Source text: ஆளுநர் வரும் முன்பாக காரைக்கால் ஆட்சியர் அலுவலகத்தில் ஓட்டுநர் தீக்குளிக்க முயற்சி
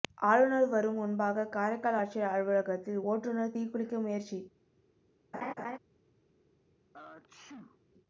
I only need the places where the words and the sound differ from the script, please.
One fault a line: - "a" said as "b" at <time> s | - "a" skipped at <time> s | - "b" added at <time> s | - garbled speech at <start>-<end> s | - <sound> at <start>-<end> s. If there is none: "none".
- laugh at 5.3-5.8 s
- sneeze at 6.9-7.8 s